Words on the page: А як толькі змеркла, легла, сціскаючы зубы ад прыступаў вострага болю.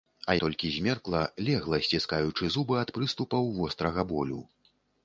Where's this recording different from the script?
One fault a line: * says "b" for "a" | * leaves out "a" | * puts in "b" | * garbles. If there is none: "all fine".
* leaves out "як"